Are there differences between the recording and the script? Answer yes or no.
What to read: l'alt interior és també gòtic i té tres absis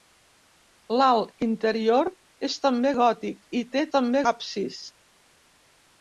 yes